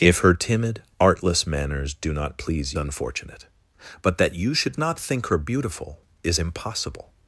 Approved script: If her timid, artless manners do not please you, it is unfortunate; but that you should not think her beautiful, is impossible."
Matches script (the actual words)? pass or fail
fail